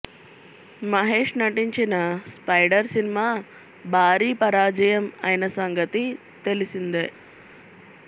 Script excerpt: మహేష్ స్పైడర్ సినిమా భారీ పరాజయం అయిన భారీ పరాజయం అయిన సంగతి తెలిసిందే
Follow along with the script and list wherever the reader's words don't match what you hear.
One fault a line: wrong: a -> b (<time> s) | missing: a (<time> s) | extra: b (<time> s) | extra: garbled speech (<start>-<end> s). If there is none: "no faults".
extra: నటించిన (1.4 s)
missing: భారీ పరాజయం అయిన (5.5 s)